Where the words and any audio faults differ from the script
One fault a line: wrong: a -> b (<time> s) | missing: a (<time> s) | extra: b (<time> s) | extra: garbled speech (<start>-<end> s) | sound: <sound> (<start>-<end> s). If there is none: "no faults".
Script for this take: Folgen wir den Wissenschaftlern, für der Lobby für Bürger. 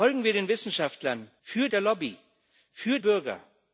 no faults